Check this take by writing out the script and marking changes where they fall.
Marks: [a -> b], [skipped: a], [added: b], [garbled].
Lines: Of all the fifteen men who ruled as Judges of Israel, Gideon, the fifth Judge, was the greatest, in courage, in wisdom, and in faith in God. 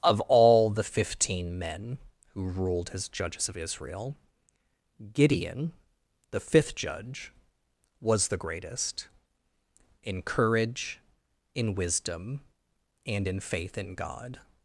Of all the fifteen men who ruled as Judges of Israel, Gideon, the fifth Judge, was the greatest, in courage, in wisdom, and in faith in God.